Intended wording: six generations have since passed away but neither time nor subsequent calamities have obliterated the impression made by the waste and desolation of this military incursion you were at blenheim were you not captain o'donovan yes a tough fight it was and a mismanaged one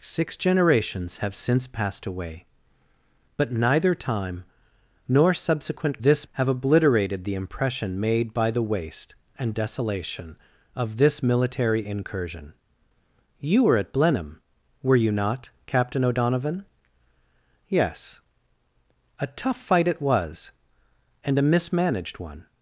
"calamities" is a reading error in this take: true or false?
true